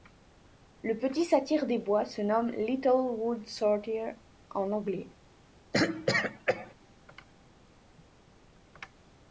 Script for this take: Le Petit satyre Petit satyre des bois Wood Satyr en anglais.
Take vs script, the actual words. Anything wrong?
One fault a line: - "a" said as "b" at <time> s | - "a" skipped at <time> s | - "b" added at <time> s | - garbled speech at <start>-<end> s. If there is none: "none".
- "Petit satyre des bois" said as "des bois se nomme Little" at 1.7 s